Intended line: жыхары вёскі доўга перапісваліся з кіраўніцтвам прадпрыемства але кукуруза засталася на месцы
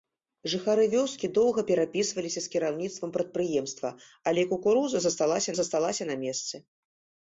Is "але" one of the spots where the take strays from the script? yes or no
no